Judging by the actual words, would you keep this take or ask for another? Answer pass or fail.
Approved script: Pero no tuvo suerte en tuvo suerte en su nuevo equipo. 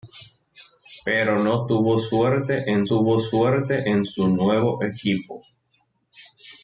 pass